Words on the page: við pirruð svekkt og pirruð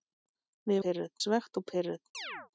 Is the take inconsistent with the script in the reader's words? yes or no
no